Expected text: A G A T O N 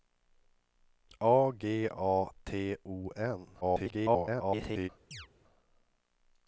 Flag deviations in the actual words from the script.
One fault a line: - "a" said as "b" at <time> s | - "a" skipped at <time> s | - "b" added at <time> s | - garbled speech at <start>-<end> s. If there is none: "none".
- garbled speech at 3.6-4.9 s